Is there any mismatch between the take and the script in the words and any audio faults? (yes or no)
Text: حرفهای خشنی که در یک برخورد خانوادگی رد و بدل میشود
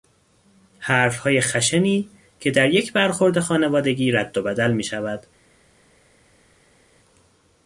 no